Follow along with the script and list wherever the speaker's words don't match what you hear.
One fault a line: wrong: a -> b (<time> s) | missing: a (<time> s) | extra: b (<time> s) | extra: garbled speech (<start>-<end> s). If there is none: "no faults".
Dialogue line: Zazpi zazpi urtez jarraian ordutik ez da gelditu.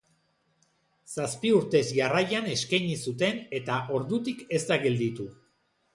missing: zazpi (1.5 s)
extra: eskaini zuten eta (2.5 s)